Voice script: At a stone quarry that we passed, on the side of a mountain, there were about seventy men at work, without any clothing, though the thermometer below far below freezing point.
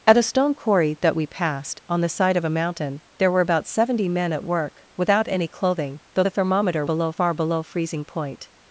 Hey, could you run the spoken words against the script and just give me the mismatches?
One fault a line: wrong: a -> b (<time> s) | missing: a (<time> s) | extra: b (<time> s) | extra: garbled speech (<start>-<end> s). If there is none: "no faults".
no faults